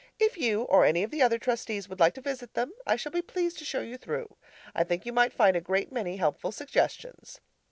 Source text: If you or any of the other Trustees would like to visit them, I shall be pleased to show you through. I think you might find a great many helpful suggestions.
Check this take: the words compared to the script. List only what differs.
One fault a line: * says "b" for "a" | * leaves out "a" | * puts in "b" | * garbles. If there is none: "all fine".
all fine